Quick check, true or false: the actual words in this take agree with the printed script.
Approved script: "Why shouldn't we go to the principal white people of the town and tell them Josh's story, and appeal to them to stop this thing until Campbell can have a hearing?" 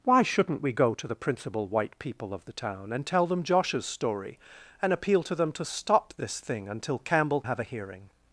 false